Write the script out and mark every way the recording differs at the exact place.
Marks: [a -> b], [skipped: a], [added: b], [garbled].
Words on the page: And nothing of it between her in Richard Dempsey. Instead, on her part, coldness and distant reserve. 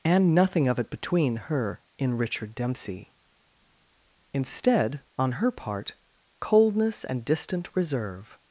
And nothing of it between her in Richard Dempsey. Instead, on her part, coldness and distant reserve.